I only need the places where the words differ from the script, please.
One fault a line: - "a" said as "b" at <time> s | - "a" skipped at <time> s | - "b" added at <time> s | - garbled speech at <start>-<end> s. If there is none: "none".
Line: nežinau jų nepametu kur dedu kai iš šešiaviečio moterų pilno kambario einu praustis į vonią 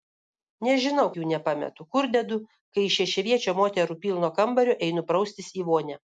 none